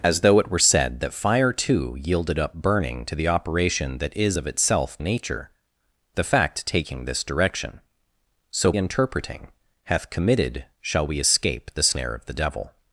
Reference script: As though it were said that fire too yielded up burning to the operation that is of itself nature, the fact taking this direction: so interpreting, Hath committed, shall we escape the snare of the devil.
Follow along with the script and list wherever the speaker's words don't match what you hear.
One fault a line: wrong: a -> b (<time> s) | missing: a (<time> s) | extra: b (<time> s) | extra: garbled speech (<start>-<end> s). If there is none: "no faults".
no faults